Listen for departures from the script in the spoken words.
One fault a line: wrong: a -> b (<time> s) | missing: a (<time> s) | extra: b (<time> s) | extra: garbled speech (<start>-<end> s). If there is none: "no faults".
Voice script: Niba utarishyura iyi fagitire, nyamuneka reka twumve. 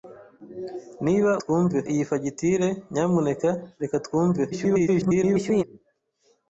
wrong: utarishyura -> twumve (1.4 s)
extra: garbled speech (4.5-5.6 s)